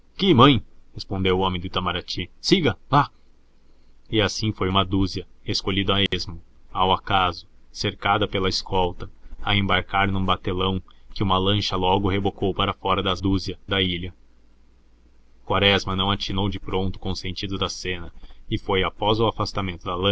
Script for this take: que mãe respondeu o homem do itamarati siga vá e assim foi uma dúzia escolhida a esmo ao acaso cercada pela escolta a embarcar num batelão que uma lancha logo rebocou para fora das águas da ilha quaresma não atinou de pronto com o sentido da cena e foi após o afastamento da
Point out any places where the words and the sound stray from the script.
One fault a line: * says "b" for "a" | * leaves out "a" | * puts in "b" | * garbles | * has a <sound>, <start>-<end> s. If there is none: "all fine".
* has a dropout, 6.1-6.1 s
* says "dúzia" for "águas"